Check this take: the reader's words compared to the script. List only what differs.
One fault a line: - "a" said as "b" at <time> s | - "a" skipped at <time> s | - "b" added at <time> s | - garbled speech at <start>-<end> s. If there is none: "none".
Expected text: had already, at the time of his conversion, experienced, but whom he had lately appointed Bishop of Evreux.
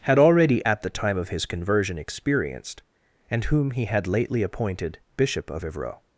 - "but" said as "and" at 3.3 s